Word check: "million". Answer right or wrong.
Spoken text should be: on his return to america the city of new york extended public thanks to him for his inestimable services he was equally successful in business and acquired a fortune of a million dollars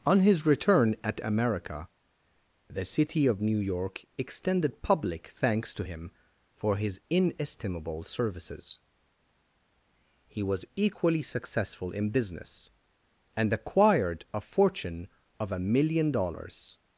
right